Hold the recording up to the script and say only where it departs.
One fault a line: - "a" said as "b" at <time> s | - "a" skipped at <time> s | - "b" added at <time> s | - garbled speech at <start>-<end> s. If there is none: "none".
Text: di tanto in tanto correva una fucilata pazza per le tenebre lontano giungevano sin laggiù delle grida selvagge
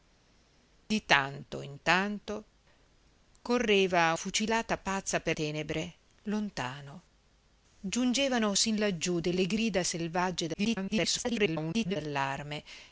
- "una" skipped at 4.1 s
- "le" skipped at 5.4 s
- garbled speech at 10.5-12.0 s